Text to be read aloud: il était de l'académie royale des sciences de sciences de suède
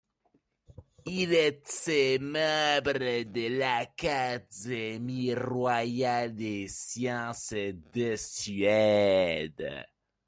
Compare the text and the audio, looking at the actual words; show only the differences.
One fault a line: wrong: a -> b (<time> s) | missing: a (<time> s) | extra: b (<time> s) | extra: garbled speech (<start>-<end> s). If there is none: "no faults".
extra: membre (2.2 s)
missing: sciences de (8.2 s)